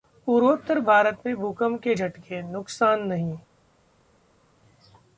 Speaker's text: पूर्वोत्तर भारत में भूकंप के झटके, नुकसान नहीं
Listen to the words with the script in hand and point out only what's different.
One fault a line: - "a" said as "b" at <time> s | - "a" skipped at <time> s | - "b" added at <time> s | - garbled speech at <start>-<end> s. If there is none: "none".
none